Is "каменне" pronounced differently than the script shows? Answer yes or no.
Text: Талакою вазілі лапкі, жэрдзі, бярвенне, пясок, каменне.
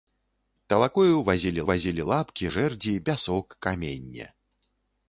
no